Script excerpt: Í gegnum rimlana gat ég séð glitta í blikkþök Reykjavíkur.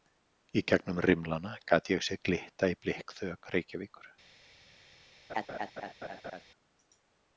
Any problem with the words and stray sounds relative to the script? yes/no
yes